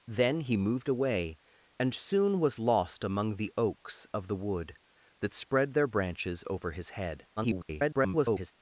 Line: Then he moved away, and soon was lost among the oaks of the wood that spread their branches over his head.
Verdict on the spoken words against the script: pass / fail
fail